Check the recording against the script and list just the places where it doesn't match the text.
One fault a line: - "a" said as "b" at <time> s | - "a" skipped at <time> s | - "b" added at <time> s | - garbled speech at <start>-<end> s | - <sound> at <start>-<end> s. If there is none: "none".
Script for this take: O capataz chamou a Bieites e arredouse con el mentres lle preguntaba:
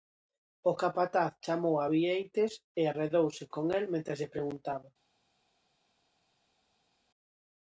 none